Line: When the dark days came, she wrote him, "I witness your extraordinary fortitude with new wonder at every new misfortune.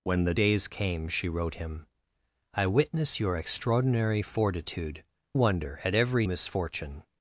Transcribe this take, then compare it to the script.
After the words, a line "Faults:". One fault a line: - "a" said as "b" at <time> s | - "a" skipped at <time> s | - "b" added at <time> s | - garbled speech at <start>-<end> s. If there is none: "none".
When the days came, she wrote him, "I witness your extraordinary fortitude wonder at every misfortune.
Faults:
- "dark" skipped at 0.3 s
- "with new" skipped at 5.0 s
- "new" skipped at 6.3 s